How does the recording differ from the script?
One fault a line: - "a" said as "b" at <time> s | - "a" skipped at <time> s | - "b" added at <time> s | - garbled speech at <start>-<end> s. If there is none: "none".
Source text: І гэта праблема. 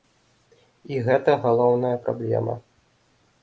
- "галоўная" added at 1.4 s